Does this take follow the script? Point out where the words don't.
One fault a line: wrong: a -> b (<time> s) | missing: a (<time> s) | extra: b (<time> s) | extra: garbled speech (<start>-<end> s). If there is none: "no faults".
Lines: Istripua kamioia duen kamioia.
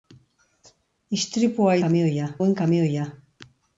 no faults